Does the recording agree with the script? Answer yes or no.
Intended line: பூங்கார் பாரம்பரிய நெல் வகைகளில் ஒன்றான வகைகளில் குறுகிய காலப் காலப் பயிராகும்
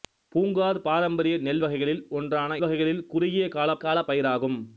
yes